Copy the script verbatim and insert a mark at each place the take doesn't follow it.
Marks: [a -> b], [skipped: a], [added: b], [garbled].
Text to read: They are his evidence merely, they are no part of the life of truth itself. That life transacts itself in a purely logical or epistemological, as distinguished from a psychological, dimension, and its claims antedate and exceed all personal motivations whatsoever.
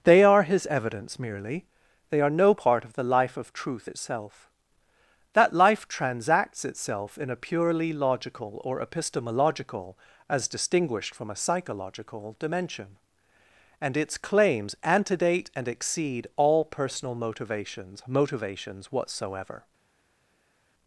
They are his evidence merely, they are no part of the life of truth itself. That life transacts itself in a purely logical or epistemological, as distinguished from a psychological, dimension, and its claims antedate and exceed all personal motivations [added: motivations] whatsoever.